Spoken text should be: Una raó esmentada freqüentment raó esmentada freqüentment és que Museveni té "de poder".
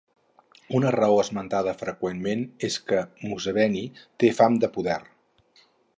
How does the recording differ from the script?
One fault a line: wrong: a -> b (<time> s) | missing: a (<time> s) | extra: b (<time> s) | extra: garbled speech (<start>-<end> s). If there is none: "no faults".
missing: raó esmentada freqüentment (2.4 s)
extra: fam (4.4 s)